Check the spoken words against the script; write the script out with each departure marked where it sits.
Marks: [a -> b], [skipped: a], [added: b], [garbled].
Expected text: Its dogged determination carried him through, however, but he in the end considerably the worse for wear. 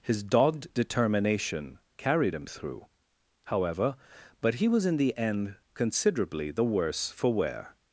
[Its -> His] dogged determination carried him through, however, but he [added: was] in the end considerably the worse for wear.